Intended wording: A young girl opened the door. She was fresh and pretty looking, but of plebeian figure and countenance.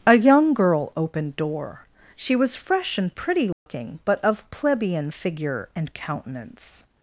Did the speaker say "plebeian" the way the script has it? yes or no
yes